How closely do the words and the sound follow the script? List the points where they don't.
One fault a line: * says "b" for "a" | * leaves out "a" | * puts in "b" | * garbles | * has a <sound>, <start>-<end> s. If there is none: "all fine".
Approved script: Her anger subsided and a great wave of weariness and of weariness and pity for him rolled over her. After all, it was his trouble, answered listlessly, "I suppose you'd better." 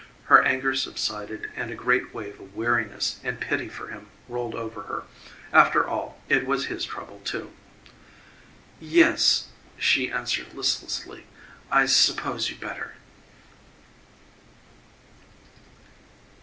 * leaves out "of weariness and"
* puts in "too Yes she"